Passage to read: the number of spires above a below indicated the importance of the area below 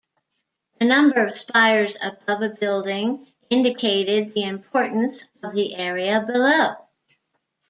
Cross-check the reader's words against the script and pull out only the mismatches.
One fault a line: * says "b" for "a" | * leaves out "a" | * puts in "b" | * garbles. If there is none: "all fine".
* says "building" for "below"